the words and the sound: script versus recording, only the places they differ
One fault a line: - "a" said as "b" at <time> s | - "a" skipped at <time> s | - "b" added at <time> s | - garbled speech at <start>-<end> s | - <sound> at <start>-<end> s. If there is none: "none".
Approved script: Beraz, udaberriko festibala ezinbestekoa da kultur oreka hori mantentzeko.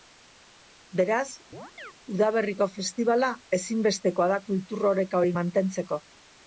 - chirp at 1.5-1.9 s